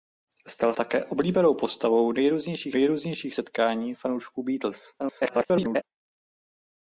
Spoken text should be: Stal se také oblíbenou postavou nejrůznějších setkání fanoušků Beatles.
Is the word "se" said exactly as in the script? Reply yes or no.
no